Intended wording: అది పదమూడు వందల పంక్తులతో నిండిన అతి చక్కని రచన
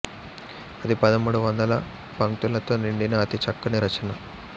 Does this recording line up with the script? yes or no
yes